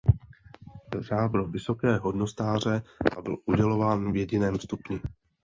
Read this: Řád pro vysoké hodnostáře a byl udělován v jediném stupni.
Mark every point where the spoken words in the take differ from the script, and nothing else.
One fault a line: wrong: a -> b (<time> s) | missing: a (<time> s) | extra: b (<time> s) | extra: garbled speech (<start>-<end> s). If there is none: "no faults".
no faults